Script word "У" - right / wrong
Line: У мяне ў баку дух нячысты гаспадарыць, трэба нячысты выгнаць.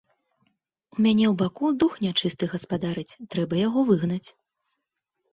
right